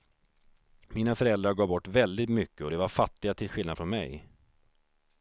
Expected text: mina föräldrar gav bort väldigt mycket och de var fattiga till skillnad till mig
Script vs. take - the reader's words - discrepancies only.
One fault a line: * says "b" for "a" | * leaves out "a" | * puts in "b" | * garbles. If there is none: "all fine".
* says "från" for "till"